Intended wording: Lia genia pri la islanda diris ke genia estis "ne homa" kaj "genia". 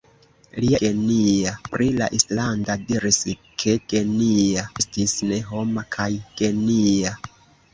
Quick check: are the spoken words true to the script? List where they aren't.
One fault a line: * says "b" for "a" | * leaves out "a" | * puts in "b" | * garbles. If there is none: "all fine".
all fine